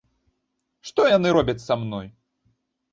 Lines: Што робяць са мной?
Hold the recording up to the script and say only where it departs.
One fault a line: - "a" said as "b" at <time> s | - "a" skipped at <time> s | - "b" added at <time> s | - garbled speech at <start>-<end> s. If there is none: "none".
- "яны" added at 1.2 s